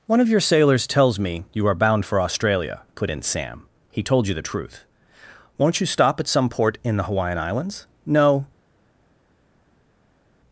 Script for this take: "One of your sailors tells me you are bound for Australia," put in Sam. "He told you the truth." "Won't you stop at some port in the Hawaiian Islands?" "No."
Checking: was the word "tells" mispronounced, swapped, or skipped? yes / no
no